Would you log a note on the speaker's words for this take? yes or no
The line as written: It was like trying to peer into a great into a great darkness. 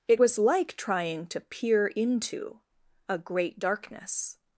yes